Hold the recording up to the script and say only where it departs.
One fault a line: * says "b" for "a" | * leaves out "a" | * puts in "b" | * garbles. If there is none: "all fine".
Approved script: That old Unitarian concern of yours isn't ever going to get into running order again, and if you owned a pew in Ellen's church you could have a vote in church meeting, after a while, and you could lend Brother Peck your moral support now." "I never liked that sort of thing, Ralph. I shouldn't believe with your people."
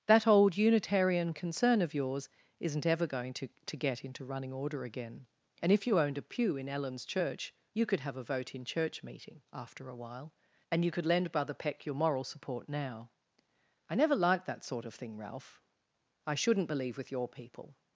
* puts in "to"